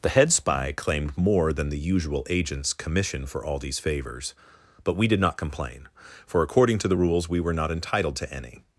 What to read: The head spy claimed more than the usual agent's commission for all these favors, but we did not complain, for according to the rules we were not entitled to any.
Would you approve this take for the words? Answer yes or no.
yes